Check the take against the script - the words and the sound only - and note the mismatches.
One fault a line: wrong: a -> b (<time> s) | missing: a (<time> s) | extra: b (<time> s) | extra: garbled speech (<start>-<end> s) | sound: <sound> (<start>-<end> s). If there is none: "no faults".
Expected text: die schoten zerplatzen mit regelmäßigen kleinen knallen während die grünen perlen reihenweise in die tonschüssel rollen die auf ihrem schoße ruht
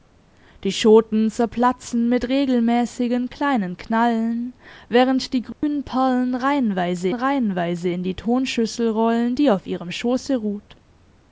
sound: dropout (5.5-5.6 s)
extra: reihenweise (7.1 s)